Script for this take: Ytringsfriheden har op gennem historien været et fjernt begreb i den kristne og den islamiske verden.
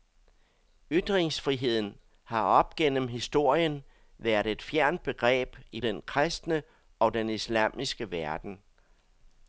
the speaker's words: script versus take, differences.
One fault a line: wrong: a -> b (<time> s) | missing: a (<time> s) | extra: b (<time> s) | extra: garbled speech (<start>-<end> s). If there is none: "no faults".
no faults